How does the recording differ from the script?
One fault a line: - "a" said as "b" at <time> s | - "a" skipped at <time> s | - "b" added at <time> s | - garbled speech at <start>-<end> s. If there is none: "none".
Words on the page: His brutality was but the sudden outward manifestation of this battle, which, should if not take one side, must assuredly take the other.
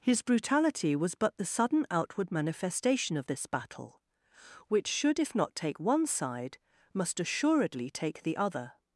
none